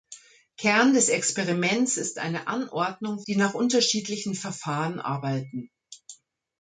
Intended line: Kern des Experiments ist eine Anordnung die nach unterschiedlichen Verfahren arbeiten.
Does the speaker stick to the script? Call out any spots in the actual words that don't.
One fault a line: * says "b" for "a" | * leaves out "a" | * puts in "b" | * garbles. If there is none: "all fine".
all fine